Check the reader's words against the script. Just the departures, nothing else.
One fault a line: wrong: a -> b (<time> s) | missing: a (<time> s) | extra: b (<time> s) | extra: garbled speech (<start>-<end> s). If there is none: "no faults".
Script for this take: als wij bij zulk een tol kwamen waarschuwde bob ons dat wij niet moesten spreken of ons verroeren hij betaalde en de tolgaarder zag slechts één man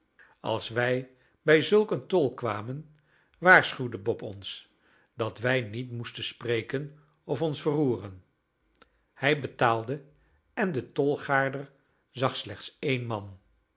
no faults